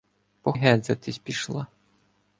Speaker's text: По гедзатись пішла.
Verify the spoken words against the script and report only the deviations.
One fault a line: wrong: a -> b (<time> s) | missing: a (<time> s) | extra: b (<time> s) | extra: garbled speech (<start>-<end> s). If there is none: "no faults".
no faults